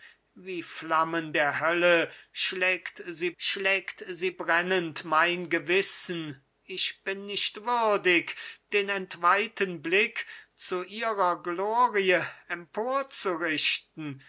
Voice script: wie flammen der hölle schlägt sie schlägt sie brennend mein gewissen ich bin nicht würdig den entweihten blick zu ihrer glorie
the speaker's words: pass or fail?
pass